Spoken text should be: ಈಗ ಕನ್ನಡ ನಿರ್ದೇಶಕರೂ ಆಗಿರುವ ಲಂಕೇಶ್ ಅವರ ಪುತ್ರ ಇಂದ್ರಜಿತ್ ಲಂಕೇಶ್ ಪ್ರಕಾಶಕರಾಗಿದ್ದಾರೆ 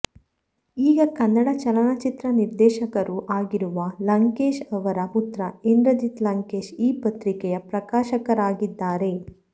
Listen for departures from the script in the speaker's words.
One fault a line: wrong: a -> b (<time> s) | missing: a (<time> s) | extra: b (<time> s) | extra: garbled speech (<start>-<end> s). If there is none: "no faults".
extra: ಚಲನಚಿತ್ರ (1.6 s)
extra: ಈ ಪತ್ರಿಕೆಯ (6.8 s)